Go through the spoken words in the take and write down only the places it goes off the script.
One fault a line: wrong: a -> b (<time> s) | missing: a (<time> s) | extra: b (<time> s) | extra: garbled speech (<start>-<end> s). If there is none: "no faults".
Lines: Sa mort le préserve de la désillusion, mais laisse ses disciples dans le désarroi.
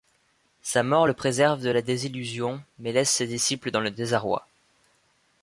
no faults